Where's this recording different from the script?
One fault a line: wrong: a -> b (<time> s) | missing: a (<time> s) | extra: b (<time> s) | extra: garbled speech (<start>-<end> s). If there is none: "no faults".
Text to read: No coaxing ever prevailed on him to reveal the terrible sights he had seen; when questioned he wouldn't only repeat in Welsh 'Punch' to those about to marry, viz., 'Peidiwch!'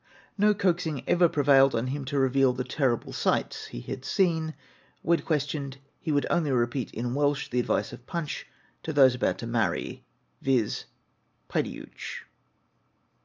wrong: wouldn't -> would (6.1 s)
extra: the advice of (7.5 s)